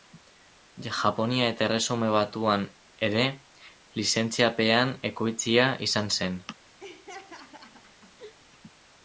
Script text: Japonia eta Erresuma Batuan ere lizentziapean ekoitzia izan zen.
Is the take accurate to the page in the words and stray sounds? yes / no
no